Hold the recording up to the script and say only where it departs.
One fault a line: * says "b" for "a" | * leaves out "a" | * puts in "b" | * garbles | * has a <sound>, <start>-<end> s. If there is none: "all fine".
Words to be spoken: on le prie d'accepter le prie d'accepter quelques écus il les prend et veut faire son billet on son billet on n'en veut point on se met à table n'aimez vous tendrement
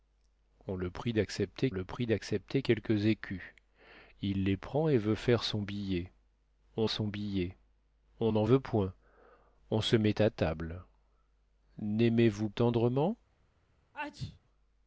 * has a sneeze, 13.9-14.4 s